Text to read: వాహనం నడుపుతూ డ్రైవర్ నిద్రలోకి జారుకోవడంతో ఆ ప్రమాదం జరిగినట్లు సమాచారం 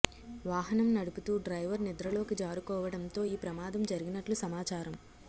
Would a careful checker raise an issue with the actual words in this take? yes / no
yes